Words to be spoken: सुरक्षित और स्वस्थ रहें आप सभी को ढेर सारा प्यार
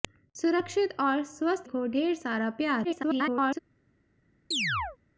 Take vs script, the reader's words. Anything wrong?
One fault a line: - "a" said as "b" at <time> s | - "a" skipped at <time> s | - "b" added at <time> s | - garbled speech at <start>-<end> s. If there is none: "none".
- "रहें आप सभी" skipped at 1.7 s
- garbled speech at 2.8-3.6 s